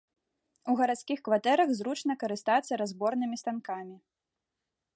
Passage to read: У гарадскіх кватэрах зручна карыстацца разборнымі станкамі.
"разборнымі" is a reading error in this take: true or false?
false